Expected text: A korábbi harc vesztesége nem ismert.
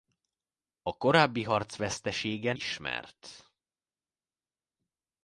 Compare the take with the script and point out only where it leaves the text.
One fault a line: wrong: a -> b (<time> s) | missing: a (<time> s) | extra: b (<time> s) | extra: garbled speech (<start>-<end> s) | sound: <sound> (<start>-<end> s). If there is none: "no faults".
missing: nem (2.5 s)